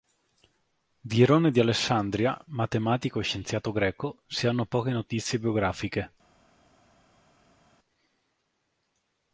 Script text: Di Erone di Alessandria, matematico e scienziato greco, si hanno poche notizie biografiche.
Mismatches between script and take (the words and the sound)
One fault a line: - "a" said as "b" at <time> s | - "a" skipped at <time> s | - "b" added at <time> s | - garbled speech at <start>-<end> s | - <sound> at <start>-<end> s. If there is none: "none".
none